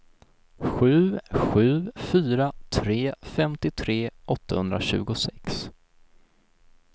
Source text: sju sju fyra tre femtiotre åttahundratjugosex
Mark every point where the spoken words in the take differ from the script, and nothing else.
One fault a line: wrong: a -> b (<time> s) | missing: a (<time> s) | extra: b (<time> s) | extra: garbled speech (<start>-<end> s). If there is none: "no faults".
no faults